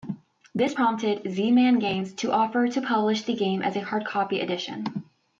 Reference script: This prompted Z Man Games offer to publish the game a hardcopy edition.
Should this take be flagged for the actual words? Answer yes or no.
yes